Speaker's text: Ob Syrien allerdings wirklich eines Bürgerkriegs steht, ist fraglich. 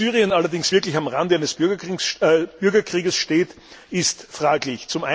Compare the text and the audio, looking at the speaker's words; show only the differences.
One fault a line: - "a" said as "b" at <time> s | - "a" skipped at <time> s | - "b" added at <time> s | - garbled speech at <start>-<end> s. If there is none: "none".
- "am Rande" added at 0.9 s